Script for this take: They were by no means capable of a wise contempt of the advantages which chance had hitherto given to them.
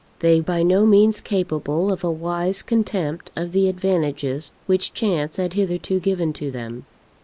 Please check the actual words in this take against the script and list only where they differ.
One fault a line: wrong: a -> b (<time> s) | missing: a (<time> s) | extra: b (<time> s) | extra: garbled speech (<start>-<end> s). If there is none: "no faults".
missing: were (0.4 s)